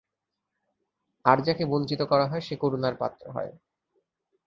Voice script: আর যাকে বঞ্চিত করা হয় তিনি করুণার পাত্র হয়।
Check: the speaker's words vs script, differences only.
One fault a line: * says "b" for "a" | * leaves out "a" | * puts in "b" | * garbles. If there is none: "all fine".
* says "সে" for "তিনি"